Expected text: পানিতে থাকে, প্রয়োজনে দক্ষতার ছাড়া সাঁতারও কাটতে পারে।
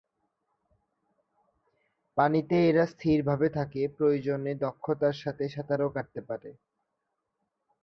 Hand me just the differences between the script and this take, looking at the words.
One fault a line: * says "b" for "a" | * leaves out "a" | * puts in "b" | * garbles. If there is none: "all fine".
* puts in "এরা স্থিরভাবে"
* says "সাথে" for "ছাড়া"